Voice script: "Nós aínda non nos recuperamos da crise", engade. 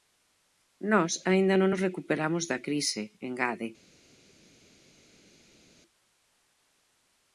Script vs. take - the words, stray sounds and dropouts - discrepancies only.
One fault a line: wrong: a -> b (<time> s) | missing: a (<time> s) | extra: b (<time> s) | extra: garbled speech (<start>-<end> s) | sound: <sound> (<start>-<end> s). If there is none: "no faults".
no faults